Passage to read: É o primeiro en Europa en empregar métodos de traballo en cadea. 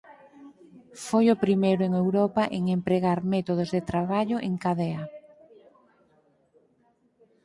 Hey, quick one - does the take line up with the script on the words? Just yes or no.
no